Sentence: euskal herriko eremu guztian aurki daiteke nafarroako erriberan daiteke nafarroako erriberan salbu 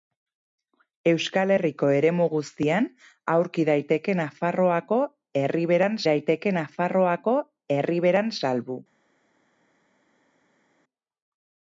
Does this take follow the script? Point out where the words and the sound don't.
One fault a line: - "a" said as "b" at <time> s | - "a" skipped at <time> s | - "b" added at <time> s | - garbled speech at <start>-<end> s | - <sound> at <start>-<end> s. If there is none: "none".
none